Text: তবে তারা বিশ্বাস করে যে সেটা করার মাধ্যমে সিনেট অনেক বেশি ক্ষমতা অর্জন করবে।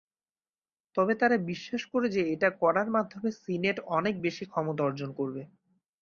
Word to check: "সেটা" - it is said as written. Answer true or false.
false